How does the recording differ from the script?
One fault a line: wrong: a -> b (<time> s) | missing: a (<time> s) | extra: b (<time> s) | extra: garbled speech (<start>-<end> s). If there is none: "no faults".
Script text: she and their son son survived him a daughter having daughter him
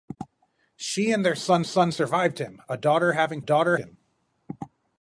no faults